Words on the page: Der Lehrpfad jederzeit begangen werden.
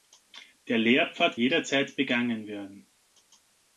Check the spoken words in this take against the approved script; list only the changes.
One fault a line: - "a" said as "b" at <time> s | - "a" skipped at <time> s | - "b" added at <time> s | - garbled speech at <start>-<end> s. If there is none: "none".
none